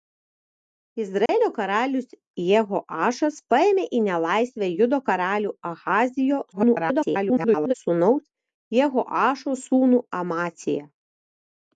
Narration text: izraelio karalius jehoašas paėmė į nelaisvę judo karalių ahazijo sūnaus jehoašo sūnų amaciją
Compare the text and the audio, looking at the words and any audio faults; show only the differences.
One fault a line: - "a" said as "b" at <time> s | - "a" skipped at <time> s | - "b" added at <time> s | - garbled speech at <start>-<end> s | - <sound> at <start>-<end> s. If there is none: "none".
- dropout at 1.3-1.3 s
- garbled speech at 6.5-7.7 s